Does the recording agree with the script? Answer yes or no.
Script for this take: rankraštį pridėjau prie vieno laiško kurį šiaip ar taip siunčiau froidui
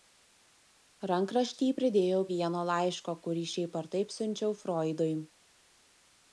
no